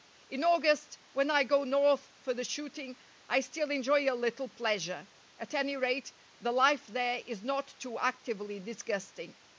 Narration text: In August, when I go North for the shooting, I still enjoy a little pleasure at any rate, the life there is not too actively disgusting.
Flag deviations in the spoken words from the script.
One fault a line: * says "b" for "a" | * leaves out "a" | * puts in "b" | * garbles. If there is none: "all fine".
all fine